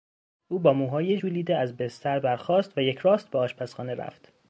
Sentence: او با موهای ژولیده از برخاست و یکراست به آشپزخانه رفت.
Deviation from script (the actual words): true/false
true